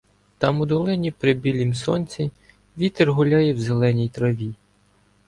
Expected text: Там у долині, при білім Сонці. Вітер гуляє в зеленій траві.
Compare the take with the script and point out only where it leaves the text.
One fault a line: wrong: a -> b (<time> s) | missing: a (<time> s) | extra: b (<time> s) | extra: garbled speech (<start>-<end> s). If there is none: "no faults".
no faults